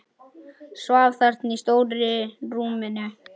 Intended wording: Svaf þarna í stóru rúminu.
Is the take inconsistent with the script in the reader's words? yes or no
no